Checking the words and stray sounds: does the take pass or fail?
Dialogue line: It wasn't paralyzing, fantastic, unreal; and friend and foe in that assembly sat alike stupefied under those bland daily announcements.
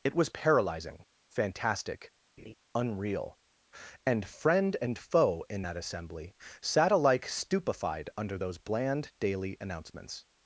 fail